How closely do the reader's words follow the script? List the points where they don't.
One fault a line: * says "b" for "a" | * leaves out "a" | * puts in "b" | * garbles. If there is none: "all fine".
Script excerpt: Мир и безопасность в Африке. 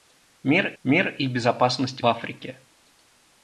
* puts in "мир"
* leaves out "в"